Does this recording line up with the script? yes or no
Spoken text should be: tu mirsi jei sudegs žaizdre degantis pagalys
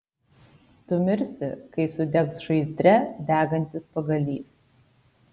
no